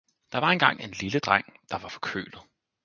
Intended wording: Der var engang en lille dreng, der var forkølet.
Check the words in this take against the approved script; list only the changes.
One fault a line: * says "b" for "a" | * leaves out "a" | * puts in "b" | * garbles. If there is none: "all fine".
all fine